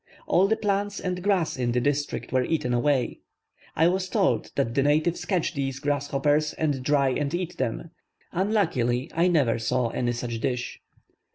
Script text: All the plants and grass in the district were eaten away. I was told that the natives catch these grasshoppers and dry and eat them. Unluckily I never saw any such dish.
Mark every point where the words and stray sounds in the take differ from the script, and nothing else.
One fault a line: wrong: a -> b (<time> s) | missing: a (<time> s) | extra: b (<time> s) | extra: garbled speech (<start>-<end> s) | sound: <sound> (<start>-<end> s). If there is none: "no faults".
no faults